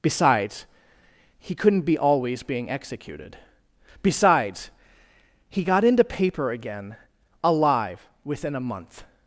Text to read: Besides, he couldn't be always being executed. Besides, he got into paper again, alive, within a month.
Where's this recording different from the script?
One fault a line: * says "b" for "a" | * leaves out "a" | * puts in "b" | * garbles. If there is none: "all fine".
all fine